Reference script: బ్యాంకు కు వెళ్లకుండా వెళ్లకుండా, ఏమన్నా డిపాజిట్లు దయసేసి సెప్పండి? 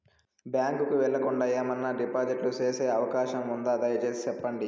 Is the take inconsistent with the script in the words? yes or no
yes